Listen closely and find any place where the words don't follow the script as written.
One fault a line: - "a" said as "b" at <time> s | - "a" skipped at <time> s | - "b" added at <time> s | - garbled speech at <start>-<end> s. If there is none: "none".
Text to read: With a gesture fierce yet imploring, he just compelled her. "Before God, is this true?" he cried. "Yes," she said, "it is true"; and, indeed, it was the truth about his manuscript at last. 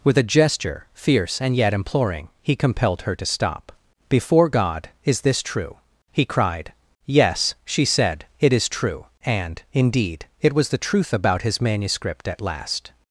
- "and" added at 1.4 s
- "just" skipped at 2.5 s
- "to stop" added at 3.1 s